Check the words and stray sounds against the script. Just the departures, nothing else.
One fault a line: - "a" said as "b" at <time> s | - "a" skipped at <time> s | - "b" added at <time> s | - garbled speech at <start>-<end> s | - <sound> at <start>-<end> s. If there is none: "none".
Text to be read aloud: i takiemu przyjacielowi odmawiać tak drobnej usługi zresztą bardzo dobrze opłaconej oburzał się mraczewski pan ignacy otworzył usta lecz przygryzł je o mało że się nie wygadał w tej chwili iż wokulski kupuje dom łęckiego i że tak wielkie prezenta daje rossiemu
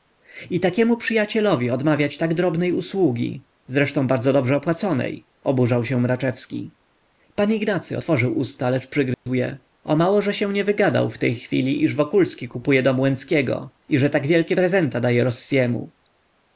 - dropout at 9.1-9.3 s